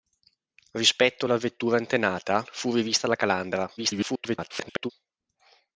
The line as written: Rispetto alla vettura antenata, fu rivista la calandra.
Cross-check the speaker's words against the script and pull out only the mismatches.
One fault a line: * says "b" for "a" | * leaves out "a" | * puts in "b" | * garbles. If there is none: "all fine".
* garbles